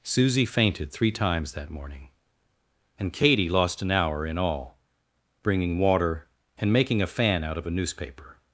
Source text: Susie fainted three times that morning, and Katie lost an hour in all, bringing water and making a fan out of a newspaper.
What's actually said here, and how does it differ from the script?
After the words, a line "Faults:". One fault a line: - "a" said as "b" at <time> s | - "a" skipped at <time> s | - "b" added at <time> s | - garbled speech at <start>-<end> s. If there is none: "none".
Susie fainted three times that morning, and Katie lost an hour in all, bringing water and making a fan out of a newspaper.
Faults:
none